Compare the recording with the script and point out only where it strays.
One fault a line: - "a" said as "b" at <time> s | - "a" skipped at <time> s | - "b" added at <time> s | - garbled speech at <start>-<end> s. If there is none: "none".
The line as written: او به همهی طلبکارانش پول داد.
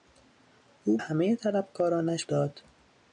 - "به" skipped at 1.0 s
- "پول" skipped at 2.3 s